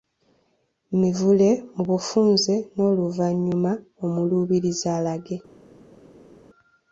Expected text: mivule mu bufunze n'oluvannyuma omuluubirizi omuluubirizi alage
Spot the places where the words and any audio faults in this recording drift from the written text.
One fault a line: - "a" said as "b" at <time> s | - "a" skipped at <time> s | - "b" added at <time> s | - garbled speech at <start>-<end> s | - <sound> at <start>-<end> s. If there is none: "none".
- "omuluubirizi" skipped at 4.9 s